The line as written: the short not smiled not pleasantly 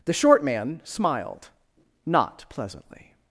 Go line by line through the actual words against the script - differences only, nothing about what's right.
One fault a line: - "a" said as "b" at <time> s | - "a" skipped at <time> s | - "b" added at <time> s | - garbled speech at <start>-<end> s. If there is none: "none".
- "not" said as "man" at 0.4 s